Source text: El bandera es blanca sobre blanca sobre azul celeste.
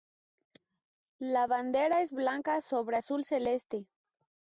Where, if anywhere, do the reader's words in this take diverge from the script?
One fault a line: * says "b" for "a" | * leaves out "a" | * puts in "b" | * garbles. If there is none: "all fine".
* says "La" for "El"
* leaves out "blanca sobre"